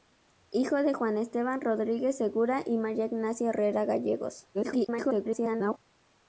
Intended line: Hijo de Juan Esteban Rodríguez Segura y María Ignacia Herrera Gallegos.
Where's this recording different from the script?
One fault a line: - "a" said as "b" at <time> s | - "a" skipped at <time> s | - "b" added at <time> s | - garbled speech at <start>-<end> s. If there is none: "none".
- garbled speech at 4.5-5.8 s